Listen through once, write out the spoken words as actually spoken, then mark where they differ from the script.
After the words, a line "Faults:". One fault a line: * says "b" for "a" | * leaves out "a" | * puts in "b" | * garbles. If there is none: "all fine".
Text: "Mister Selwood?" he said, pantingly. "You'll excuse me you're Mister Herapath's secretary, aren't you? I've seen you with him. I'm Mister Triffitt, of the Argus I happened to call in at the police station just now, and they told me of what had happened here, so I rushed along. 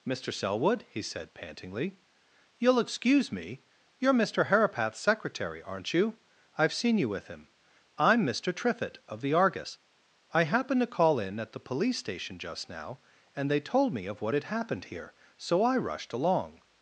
"Mister Selwood?" he said, pantingly. "You'll excuse me you're Mister Herapath's secretary, aren't you? I've seen you with him. I'm Mister Triffitt, of the Argus I happened to call in at the police station just now, and they told me of what had happened here, so I rushed along.
Faults:
all fine